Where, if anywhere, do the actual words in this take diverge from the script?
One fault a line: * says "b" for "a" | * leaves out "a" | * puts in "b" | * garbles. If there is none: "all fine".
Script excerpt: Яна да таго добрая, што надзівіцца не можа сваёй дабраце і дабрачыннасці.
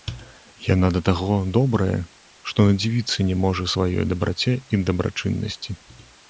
all fine